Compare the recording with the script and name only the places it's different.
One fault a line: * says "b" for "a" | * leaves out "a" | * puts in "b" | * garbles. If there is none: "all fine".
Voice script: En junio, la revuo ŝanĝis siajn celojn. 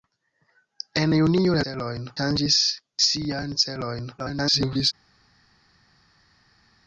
* says "celojn" for "revuo"
* garbles